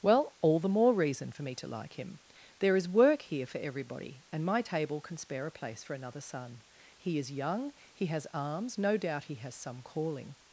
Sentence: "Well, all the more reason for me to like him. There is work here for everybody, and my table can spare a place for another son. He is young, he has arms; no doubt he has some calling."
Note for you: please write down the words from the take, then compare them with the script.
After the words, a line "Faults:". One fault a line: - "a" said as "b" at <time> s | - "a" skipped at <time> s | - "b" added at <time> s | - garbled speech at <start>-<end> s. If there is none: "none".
"Well, all the more reason for me to like him. There is work here for everybody, and my table can spare a place for another son. He is young, he has arms; no doubt he has some calling."
Faults:
none